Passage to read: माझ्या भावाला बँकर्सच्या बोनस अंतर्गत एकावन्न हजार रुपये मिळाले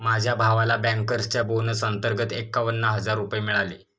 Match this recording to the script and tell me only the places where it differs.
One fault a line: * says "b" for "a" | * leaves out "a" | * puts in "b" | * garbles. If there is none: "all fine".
all fine